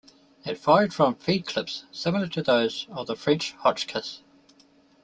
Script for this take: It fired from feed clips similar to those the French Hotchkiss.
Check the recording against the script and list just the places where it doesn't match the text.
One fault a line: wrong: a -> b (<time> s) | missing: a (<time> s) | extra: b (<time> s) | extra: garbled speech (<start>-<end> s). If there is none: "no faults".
extra: of (2.9 s)